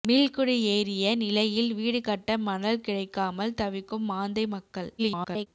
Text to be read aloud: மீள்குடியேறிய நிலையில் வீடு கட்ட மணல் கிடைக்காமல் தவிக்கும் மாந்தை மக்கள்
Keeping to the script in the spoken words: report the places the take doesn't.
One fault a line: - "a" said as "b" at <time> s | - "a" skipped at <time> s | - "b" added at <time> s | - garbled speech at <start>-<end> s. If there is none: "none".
- garbled speech at 5.0-5.5 s